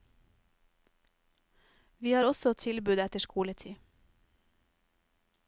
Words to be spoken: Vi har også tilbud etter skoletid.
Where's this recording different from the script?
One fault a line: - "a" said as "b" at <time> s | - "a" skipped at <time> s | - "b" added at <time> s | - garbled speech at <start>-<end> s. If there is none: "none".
none